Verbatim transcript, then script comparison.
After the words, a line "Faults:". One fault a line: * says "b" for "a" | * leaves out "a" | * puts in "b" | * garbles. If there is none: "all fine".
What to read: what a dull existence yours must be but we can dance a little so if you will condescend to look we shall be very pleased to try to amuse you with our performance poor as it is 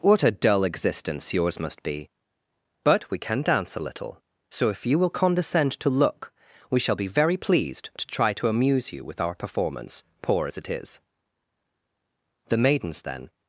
what a dull existence yours must be but we can dance a little so if you will condescend to look we shall be very pleased to try to amuse you with our performance poor as it is the maidens then
Faults:
* puts in "the maidens then"